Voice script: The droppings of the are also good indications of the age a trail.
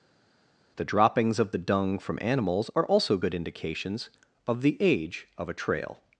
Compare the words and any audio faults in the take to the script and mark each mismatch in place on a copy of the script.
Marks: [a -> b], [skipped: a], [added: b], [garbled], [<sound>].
The droppings of the [added: dung from animals] are also good indications of the age [added: of] a trail.